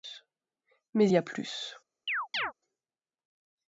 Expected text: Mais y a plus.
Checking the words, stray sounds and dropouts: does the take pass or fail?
fail